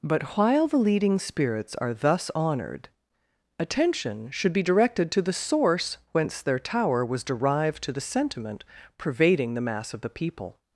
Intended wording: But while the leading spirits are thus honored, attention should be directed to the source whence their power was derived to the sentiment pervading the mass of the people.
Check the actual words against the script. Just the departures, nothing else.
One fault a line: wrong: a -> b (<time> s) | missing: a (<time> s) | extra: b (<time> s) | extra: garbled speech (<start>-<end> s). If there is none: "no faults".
wrong: power -> tower (6.6 s)